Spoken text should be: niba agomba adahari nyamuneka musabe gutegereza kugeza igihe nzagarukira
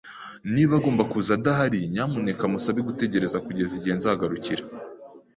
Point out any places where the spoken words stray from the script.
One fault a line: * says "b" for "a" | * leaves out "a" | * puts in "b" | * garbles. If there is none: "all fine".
* puts in "kuza"